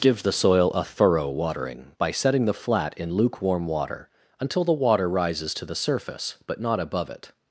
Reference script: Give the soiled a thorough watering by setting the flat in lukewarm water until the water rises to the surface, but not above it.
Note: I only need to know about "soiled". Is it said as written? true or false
false